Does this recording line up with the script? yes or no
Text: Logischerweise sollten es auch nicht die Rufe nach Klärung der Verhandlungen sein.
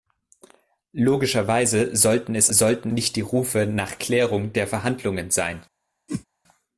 no